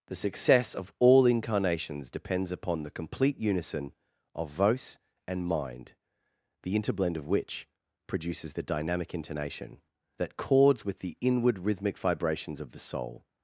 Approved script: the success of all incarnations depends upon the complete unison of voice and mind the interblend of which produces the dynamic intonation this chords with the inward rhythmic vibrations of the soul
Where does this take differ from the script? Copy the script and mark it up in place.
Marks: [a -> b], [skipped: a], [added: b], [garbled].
the success of all incarnations depends upon the complete unison of voice and mind the interblend of which produces the dynamic intonation [this -> that] chords with the inward rhythmic vibrations of the soul